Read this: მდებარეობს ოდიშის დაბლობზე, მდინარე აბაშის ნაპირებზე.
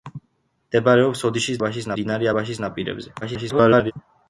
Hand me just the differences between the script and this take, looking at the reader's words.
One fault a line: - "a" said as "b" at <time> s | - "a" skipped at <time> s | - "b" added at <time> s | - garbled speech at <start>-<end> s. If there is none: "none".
- "დაბლობზე" said as "აბაშის" at 1.6 s
- garbled speech at 3.2-3.9 s